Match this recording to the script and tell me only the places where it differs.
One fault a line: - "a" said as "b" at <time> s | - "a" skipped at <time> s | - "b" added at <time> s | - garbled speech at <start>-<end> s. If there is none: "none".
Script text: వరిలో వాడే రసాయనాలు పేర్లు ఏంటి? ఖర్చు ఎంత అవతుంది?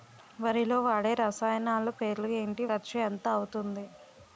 none